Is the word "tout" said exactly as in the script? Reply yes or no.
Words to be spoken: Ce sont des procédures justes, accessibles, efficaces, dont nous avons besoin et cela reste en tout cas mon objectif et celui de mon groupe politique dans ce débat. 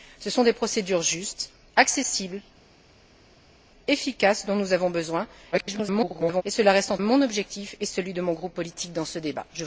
no